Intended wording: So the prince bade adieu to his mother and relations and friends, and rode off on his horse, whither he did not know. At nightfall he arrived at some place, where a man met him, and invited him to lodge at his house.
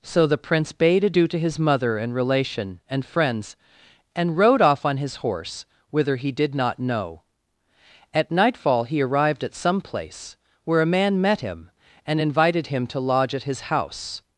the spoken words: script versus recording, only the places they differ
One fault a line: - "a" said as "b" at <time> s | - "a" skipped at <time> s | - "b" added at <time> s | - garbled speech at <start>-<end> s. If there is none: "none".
- "relations" said as "relation" at 2.1 s